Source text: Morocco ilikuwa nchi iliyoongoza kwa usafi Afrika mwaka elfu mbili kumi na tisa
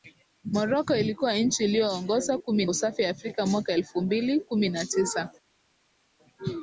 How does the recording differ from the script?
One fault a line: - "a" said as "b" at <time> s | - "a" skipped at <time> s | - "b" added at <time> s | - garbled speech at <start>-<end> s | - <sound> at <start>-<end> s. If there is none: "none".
- "kwa" said as "kumi" at 2.4 s